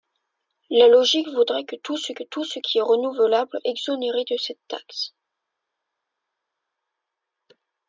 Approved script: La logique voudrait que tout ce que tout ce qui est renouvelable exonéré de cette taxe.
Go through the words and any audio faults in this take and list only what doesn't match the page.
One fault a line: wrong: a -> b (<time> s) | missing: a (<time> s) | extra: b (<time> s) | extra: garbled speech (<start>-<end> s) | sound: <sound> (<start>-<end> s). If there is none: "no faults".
no faults